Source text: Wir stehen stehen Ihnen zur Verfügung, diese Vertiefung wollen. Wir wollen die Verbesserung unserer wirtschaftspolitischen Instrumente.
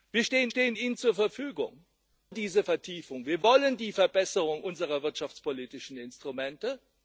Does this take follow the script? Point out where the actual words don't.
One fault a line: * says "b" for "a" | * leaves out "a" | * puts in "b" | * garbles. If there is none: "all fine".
all fine